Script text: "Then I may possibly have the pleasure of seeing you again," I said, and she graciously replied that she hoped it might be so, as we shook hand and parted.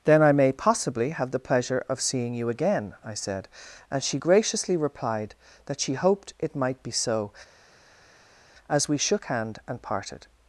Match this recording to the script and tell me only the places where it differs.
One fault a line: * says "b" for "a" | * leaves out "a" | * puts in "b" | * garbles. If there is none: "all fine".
all fine